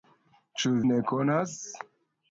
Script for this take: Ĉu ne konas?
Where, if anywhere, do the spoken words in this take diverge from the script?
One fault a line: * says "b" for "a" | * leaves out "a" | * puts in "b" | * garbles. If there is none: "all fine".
all fine